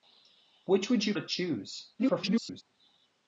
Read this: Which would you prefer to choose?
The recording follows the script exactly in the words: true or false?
false